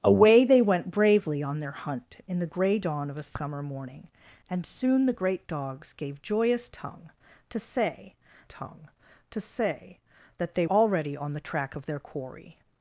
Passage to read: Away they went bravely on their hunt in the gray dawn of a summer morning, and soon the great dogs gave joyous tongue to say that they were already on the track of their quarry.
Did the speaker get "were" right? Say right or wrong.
wrong